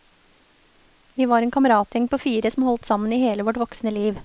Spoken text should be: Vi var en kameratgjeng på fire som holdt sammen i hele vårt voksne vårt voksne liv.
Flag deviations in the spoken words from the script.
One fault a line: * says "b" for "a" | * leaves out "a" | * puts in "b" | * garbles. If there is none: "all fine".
* leaves out "vårt voksne"